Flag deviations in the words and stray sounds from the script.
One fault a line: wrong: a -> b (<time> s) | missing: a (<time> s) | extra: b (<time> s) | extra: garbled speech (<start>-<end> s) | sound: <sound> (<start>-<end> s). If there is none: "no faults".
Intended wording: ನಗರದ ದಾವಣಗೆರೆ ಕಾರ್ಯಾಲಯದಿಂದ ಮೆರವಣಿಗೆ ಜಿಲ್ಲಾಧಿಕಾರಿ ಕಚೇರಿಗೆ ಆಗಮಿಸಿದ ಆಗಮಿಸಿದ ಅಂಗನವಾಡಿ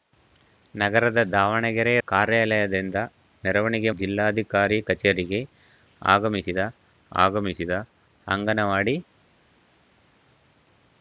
no faults